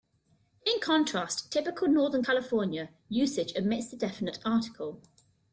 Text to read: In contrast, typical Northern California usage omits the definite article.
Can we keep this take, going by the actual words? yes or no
yes